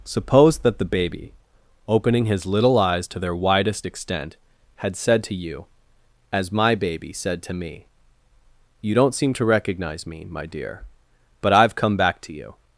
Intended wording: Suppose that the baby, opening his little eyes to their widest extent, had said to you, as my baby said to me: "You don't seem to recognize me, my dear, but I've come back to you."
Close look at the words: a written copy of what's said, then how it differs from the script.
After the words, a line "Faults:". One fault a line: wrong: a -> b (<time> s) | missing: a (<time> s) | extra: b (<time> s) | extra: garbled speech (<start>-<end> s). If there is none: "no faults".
Suppose that the baby, opening his little eyes to their widest extent, had said to you, as my baby said to me: "You don't seem to recognize me, my dear, but I've come back to you."
Faults:
no faults